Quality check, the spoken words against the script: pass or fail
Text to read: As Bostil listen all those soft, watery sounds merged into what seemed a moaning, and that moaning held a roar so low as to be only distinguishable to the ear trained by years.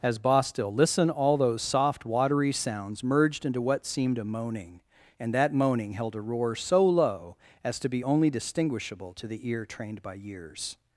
pass